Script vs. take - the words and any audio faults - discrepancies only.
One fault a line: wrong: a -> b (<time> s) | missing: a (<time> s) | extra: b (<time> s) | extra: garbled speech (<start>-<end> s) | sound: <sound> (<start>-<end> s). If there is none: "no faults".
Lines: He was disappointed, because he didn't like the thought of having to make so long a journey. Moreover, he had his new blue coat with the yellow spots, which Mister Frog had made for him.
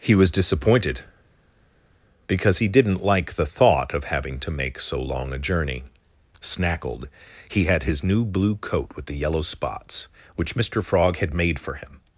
wrong: Moreover -> Snackled (6.4 s)